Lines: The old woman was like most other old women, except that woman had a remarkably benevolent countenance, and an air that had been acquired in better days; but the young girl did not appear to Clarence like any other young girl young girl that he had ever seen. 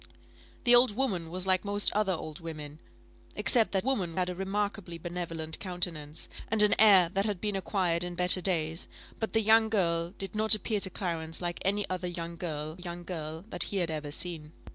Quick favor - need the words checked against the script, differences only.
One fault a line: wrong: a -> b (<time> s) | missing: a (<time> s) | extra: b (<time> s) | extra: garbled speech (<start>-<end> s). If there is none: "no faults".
no faults